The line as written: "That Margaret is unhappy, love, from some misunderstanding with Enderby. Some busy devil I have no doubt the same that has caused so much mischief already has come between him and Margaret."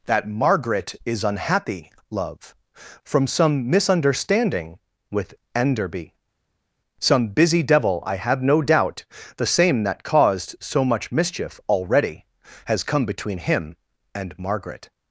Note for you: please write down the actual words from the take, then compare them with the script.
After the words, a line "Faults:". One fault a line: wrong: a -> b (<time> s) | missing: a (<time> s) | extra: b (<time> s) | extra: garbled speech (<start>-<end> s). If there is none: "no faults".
"That Margaret is unhappy, love, from some misunderstanding with Enderby. Some busy devil I have no doubt the same that caused so much mischief already has come between him and Margaret."
Faults:
missing: has (10.0 s)